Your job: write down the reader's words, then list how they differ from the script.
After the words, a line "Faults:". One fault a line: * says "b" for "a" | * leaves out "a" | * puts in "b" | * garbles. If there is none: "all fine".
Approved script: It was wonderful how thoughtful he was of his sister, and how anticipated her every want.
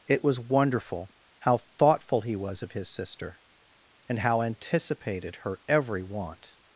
It was wonderful how thoughtful he was of his sister, and how anticipated her every want.
Faults:
all fine